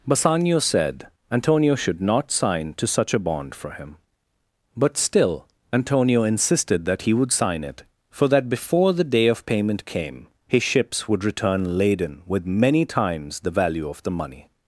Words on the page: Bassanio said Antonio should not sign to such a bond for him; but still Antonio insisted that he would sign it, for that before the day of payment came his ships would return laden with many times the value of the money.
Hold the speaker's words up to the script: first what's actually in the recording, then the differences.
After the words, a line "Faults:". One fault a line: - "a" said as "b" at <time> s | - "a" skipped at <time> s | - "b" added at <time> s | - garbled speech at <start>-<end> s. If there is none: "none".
Bassanio said Antonio should not sign to such a bond for him; but still Antonio insisted that he would sign it, for that before the day of payment came his ships would return laden with many times the value of the money.
Faults:
none